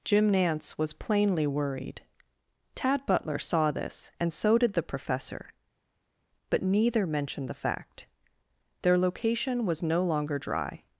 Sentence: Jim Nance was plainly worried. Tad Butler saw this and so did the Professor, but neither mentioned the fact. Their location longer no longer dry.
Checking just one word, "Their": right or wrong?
right